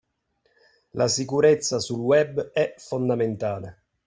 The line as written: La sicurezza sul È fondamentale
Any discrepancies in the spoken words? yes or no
yes